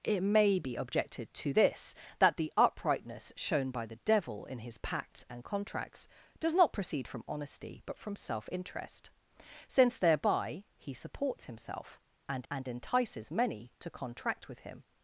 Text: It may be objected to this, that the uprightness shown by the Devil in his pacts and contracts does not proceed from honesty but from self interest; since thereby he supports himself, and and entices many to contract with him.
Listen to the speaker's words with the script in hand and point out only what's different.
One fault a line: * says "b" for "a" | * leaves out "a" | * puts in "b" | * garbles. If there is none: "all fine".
all fine